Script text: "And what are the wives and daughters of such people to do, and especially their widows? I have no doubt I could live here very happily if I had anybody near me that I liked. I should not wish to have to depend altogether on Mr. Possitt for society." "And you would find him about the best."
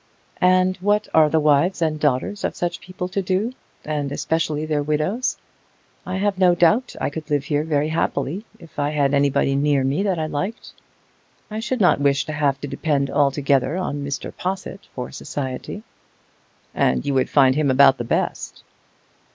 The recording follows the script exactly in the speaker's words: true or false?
true